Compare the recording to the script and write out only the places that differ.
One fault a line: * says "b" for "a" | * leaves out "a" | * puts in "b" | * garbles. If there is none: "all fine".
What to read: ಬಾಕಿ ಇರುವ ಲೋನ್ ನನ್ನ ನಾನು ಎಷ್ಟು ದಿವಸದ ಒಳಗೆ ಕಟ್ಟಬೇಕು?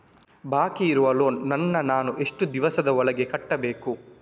all fine